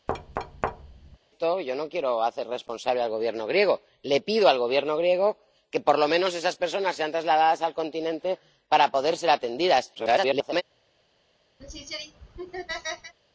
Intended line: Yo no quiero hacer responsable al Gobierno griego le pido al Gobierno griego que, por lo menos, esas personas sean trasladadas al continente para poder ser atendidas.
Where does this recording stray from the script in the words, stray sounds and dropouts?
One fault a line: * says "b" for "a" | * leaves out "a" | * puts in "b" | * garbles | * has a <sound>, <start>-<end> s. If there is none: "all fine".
* has a thud, 0.1-1.2 s
* garbles
* has a laugh, 11.6-13.1 s